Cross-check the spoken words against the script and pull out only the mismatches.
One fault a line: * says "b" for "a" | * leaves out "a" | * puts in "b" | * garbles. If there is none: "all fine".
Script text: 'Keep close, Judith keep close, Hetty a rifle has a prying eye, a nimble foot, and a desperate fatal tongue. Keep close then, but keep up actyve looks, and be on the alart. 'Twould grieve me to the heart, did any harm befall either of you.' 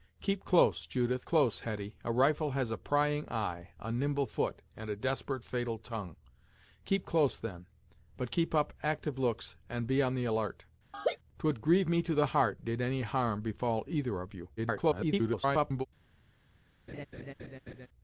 * leaves out "keep"
* garbles